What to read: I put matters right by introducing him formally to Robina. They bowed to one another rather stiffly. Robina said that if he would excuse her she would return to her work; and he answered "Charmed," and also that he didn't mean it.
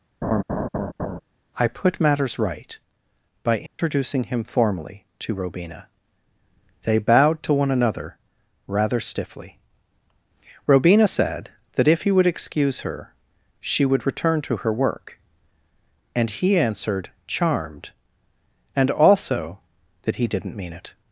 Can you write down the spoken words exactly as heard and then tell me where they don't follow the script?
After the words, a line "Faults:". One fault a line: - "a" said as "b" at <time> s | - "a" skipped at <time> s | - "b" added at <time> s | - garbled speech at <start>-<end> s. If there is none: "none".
I put matters right by introducing him formally to Robina. They bowed to one another rather stiffly. Robina said that if he would excuse her she would return to her work; and he answered "Charmed," and also that he didn't mean it.
Faults:
none